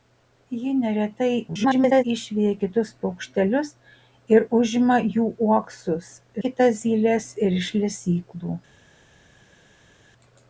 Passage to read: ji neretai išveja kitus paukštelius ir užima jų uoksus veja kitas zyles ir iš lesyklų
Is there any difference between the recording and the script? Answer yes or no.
yes